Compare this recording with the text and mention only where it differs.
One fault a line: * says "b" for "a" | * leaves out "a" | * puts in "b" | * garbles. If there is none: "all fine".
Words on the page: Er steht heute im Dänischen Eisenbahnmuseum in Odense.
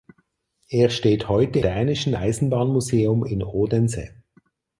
* leaves out "im"